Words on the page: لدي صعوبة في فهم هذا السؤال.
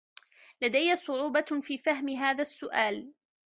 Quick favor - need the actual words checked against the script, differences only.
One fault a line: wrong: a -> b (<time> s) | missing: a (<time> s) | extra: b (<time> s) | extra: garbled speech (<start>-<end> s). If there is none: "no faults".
no faults